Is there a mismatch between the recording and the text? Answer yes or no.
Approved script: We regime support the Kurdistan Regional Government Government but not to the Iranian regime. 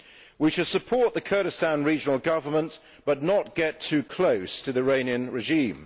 yes